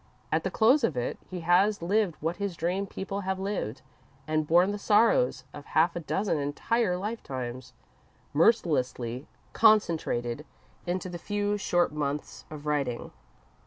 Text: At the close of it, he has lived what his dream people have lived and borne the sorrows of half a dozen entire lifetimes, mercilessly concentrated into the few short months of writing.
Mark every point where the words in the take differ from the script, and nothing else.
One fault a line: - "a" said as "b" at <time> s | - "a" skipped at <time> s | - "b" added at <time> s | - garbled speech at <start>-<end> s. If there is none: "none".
none